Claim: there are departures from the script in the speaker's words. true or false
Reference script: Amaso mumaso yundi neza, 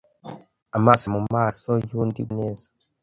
false